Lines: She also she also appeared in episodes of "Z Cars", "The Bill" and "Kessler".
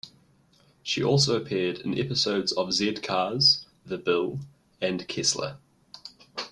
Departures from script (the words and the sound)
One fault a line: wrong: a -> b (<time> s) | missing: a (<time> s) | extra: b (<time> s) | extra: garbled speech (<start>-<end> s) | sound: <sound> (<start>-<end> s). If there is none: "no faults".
missing: she also (1.4 s)